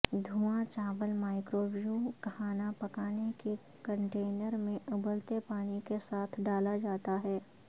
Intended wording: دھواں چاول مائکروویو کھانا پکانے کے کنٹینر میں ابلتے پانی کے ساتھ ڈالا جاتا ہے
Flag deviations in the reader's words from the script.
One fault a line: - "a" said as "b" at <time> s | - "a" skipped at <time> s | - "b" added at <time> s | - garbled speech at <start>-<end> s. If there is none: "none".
none